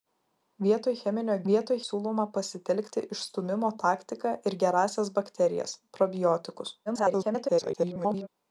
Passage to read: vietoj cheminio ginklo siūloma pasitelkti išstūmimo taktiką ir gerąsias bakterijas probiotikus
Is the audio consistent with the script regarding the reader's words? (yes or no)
no